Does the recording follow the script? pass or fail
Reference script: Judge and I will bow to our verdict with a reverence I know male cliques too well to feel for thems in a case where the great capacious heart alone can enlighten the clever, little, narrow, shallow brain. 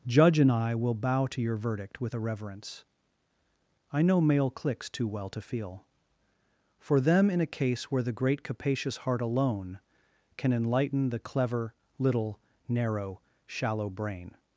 fail